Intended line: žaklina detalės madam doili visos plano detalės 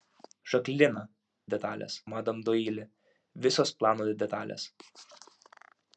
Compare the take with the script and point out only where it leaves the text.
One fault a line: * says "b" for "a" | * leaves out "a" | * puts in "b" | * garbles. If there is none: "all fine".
all fine